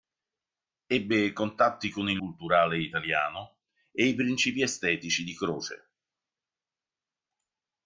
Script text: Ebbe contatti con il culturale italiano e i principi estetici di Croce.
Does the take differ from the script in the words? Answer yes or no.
no